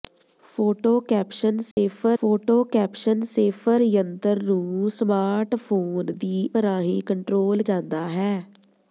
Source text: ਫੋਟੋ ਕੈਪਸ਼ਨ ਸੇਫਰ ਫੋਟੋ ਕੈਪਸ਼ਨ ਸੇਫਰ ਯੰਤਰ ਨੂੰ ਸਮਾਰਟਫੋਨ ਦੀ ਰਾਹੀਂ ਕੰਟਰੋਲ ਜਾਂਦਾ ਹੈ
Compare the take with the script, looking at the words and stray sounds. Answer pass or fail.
fail